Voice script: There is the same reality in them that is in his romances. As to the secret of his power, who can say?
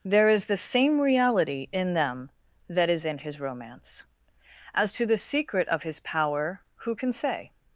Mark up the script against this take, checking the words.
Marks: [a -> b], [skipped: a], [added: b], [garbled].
There is the same reality in them that is in his [romances. -> romance] As to the secret of his power, who can say?